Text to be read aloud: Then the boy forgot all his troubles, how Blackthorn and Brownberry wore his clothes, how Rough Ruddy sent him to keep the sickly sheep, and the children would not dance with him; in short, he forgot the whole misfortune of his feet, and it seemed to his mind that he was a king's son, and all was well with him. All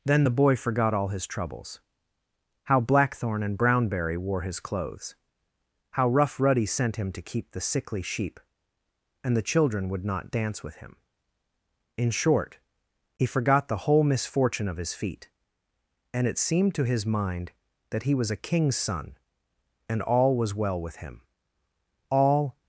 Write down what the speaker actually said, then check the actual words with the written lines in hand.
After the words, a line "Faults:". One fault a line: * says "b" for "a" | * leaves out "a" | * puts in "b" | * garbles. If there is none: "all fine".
Then the boy forgot all his troubles, how Blackthorn and Brownberry wore his clothes, how Rough Ruddy sent him to keep the sickly sheep, and the children would not dance with him; in short, he forgot the whole misfortune of his feet, and it seemed to his mind that he was a king's son, and all was well with him. All
Faults:
all fine